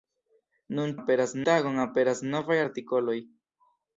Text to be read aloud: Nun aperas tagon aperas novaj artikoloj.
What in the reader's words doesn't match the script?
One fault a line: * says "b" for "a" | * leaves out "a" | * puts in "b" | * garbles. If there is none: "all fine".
all fine